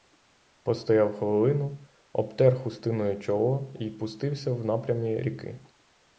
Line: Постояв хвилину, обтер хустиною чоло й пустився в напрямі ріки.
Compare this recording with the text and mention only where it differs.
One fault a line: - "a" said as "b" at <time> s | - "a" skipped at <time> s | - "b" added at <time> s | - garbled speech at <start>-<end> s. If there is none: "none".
none